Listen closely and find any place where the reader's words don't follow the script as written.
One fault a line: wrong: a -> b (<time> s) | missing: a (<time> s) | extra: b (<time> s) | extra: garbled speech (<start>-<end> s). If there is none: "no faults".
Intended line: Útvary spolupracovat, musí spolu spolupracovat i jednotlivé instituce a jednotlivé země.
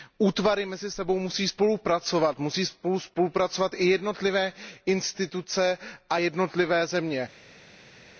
extra: mezi sebou musí (0.7 s)